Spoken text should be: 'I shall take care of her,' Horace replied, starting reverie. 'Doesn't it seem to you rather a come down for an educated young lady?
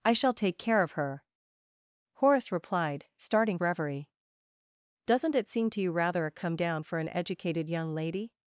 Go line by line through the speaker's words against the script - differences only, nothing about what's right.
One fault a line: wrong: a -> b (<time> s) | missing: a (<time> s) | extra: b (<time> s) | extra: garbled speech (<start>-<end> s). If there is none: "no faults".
no faults